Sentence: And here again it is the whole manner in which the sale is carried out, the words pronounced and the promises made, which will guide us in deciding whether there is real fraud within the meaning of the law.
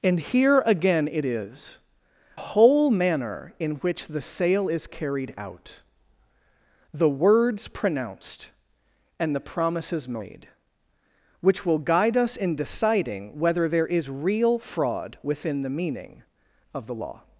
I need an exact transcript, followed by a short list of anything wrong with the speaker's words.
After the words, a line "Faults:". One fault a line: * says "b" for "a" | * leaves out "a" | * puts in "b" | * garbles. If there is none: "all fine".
And here again it is whole manner in which the sale is carried out, the words pronounced and the promises made, which will guide us in deciding whether there is real fraud within the meaning of the law.
Faults:
* leaves out "the"